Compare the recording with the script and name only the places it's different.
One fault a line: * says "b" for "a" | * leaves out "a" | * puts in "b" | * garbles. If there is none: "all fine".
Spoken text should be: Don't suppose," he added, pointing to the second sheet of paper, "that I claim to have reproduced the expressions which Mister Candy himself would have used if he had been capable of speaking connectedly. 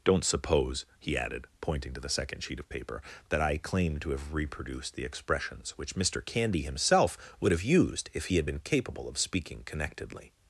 all fine